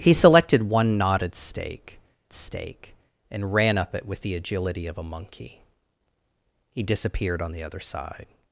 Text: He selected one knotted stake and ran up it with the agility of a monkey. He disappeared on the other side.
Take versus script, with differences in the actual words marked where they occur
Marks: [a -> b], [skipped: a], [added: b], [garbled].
He selected one knotted stake [added: stake] and ran up it with the agility of a monkey. He disappeared on the other side.